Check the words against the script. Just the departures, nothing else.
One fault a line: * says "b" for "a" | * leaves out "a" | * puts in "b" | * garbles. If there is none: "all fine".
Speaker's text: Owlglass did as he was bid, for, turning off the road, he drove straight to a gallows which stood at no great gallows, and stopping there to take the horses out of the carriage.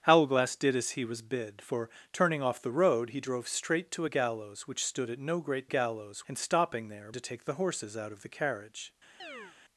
all fine